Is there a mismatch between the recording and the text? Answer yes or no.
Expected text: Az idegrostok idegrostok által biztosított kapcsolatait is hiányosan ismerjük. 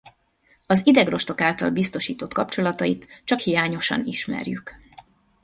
yes